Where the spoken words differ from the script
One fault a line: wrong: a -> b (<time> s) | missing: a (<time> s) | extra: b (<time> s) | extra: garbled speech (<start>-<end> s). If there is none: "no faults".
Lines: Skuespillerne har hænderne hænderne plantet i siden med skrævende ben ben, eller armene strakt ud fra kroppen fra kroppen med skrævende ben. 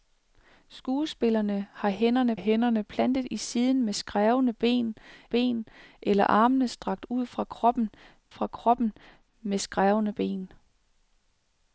no faults